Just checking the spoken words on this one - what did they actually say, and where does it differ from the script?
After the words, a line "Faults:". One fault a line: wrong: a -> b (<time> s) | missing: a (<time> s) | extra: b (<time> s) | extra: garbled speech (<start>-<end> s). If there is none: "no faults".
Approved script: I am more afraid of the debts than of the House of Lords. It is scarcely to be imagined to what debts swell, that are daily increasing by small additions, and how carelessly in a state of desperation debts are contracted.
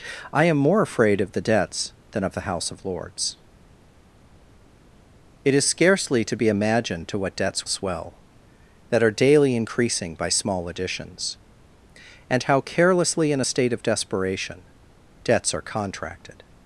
I am more afraid of the debts than of the House of Lords. It is scarcely to be imagined to what debts swell, that are daily increasing by small additions, and how carelessly in a state of desperation debts are contracted.
Faults:
no faults